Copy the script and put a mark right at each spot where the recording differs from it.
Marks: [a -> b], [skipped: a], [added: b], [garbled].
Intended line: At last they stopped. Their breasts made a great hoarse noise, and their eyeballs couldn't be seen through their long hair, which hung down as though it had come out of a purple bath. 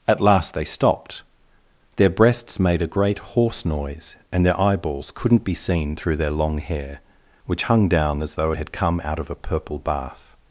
At last they stopped. Their breasts made a great hoarse noise, and their eyeballs couldn't be seen through their long hair, which hung down as though it had come out of a purple bath.